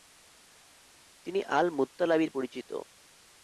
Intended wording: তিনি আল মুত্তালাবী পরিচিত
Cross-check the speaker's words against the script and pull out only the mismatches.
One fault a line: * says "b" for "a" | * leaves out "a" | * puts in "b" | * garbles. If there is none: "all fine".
all fine